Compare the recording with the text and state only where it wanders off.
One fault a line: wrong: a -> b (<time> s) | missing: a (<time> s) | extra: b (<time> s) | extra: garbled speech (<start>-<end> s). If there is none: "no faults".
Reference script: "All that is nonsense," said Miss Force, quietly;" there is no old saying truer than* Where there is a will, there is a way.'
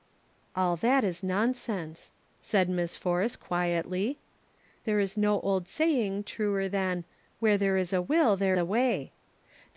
missing: is (8.6 s)